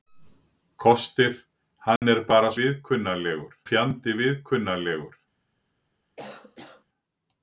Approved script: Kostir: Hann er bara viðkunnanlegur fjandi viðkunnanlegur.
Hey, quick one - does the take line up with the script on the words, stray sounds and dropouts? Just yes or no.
no